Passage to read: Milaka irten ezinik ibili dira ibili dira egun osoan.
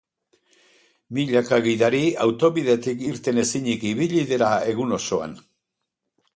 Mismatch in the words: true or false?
true